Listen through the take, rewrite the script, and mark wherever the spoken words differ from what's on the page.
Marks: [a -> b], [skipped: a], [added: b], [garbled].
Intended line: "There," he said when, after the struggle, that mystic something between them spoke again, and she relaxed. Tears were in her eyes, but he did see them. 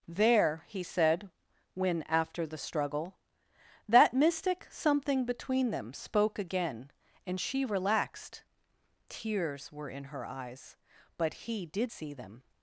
"There," he said when, after the struggle, that mystic something between them spoke again, and she relaxed. Tears were in her eyes, but he did see them.